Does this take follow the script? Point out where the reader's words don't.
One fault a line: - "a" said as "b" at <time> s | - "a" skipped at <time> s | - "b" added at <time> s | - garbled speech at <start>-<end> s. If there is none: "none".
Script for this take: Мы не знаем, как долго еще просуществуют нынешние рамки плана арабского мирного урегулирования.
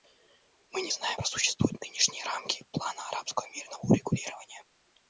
- "как долго еще" skipped at 1.2 s